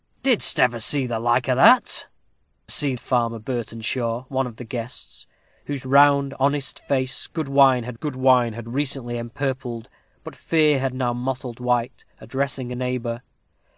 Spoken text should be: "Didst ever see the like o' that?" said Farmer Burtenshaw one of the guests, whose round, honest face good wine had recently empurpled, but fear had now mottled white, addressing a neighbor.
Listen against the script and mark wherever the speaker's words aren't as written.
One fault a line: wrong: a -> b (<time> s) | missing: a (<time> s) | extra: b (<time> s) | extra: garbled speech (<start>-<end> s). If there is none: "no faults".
wrong: said -> see (2.7 s)
extra: good wine had (7.9 s)